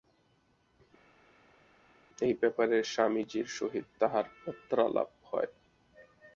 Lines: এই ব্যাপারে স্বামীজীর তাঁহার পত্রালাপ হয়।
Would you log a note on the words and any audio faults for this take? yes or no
yes